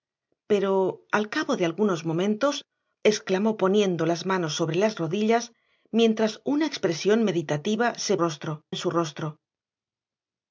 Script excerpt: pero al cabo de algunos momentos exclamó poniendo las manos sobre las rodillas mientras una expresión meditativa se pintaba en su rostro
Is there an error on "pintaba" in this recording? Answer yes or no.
yes